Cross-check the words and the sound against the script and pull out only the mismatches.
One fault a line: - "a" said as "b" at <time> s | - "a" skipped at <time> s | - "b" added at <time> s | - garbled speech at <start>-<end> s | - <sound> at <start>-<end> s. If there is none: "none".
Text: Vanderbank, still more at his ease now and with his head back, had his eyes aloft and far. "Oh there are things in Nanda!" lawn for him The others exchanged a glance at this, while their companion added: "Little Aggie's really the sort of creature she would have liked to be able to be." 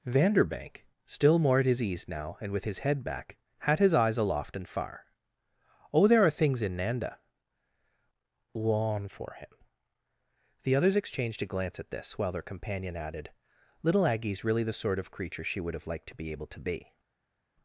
none